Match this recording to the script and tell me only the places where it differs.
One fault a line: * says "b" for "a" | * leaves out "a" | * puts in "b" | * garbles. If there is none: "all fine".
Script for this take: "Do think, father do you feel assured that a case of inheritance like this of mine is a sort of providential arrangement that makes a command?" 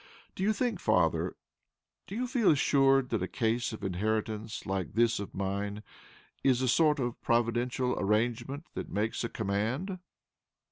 * puts in "you"